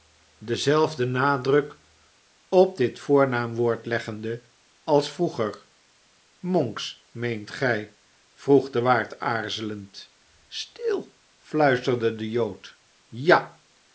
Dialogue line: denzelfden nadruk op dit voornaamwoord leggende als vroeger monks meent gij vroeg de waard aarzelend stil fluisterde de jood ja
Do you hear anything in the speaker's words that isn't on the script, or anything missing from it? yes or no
no